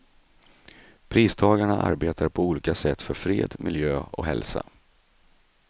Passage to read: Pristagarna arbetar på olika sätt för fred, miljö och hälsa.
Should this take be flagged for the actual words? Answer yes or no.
no